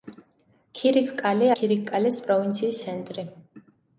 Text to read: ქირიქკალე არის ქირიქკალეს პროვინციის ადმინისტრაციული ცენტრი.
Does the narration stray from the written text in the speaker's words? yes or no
yes